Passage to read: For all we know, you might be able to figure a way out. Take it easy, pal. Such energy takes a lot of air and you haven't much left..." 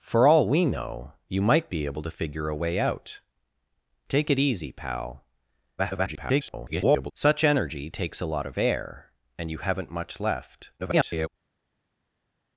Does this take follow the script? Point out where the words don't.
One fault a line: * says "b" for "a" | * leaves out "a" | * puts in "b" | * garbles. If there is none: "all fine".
* garbles
* garbles